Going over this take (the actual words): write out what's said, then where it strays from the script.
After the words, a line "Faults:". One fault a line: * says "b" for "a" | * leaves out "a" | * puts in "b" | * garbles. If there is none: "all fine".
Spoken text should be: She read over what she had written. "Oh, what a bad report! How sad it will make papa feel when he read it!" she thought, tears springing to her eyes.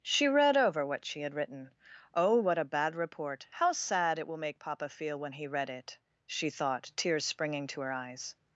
She read over what she had written. "Oh, what a bad report! How sad it will make papa feel when he read it!" she thought, tears springing to her eyes.
Faults:
all fine